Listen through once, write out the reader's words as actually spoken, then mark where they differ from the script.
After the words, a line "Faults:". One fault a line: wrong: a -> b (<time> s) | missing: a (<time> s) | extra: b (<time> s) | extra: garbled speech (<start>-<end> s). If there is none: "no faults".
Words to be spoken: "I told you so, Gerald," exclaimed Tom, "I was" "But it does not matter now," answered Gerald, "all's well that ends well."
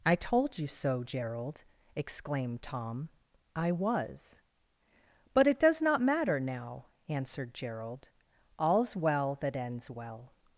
"I told you so, Gerald," exclaimed Tom, "I was" "But it does not matter now," answered Gerald, "all's well that ends well."
Faults:
no faults